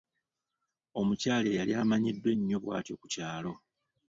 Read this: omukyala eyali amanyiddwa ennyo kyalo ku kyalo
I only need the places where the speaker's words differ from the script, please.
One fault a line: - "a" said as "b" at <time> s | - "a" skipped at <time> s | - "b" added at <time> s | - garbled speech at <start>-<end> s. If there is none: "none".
- "kyalo" said as "bw'atyo" at 2.6 s